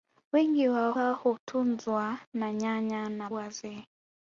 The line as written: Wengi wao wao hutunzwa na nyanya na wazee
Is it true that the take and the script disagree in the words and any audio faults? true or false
false